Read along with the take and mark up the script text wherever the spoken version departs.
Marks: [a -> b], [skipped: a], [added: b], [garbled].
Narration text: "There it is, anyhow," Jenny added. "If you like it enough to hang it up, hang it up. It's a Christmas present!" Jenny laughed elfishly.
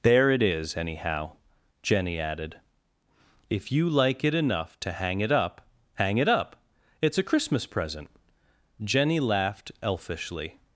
"There it is, anyhow," Jenny added. "If you like it enough to hang it up, hang it up. It's a Christmas present!" Jenny laughed elfishly.